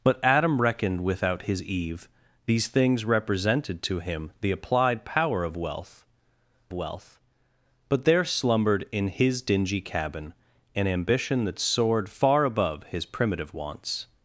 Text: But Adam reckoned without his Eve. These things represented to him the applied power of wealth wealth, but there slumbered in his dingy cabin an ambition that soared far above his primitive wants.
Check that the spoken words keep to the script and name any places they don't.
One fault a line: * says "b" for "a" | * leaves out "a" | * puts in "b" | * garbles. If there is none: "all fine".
all fine